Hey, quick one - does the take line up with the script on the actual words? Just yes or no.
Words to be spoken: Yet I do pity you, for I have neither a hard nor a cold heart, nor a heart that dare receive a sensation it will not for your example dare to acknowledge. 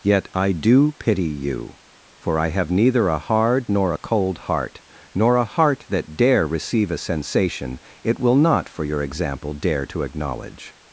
yes